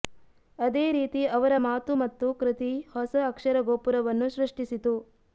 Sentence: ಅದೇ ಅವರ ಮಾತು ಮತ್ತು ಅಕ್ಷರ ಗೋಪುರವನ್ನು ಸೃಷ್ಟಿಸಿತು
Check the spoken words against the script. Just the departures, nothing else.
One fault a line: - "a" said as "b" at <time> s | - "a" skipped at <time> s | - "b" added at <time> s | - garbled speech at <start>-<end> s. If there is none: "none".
- "ರೀತಿ" added at 0.9 s
- "ಕೃತಿ ಹೊಸ" added at 2.3 s